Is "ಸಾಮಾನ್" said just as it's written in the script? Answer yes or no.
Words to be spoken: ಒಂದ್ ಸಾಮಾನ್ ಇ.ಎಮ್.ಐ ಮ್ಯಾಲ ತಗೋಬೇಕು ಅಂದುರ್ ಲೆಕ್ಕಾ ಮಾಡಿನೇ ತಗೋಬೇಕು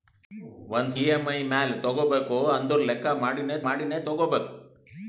no